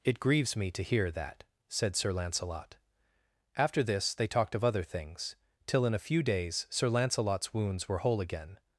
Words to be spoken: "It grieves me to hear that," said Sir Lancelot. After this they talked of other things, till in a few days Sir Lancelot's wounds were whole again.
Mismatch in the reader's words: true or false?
false